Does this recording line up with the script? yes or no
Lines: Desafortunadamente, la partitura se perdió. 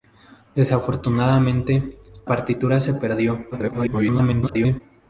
no